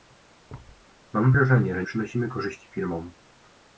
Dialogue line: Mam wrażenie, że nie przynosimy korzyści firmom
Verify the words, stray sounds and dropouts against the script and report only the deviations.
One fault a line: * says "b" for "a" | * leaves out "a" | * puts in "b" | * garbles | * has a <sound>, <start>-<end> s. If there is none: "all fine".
* has a thud, 0.5-0.9 s
* leaves out "nie"